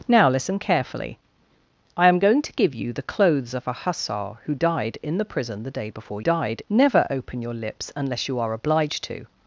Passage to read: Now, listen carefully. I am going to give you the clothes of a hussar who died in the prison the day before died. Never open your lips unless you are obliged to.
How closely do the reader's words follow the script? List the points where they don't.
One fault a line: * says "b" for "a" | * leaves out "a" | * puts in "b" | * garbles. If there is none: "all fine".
all fine